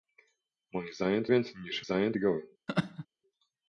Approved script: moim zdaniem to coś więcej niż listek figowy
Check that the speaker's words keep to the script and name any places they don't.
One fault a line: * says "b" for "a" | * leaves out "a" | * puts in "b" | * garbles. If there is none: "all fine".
* leaves out "coś"
* says "zdaniem" for "listek"